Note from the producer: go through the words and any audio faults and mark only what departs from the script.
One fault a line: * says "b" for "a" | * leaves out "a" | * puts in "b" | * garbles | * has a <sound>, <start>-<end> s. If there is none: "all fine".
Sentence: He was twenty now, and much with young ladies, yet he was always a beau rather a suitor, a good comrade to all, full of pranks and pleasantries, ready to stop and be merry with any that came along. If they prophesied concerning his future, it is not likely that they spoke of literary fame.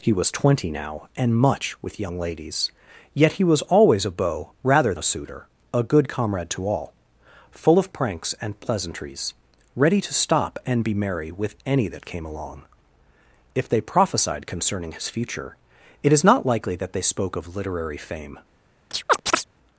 * has a chirp, 18.9-19.4 s